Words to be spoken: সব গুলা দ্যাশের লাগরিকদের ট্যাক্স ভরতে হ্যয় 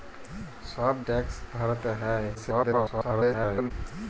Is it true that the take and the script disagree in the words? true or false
true